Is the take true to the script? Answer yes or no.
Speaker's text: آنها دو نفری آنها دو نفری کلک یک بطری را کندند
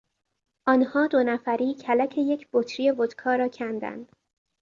no